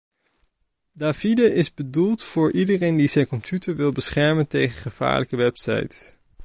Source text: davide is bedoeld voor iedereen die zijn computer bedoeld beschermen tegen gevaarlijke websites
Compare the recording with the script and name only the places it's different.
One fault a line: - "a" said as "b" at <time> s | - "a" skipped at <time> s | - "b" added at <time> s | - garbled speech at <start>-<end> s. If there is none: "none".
- "bedoeld" said as "wil" at 3.8 s